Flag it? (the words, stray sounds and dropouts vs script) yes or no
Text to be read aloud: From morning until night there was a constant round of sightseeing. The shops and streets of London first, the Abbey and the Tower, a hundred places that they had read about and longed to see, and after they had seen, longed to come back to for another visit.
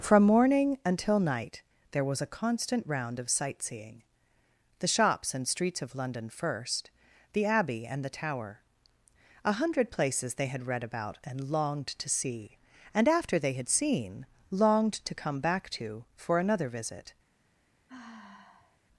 yes